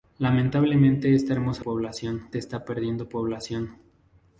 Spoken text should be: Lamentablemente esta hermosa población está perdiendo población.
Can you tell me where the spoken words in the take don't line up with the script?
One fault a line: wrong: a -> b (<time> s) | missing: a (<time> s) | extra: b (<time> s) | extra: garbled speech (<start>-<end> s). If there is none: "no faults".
no faults